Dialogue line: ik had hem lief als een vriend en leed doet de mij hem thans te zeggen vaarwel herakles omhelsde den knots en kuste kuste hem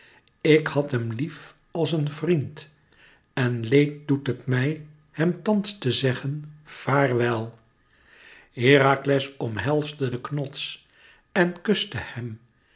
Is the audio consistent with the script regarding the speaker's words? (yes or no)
no